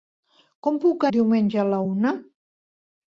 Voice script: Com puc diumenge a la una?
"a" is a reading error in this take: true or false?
false